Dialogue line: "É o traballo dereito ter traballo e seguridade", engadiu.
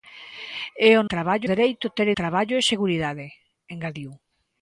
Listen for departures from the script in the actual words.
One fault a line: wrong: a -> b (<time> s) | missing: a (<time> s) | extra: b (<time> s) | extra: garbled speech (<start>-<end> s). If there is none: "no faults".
no faults